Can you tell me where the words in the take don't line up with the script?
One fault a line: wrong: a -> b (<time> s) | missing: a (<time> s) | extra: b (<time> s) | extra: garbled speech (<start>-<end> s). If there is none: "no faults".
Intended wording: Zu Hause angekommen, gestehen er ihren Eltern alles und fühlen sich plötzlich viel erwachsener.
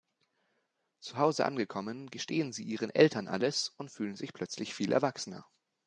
wrong: er -> sie (2.5 s)